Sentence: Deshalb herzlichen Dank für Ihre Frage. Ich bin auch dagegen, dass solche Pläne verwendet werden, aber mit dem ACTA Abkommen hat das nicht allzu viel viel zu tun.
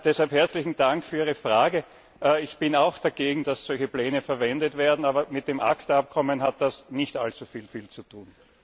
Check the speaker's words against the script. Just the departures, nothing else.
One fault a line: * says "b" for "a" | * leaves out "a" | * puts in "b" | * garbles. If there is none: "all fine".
all fine